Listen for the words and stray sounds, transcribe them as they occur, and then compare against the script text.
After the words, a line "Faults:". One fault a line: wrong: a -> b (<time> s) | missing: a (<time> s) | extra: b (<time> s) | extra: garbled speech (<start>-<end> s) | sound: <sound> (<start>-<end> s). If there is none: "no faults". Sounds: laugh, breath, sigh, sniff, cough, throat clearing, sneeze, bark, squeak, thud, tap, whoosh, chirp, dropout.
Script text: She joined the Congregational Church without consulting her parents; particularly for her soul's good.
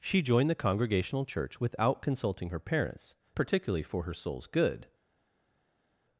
She joined the Congregational Church without consulting her parents; particularly for her soul's good.
Faults:
no faults